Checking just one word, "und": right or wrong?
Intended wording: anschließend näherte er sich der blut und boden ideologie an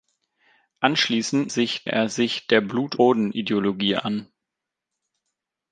wrong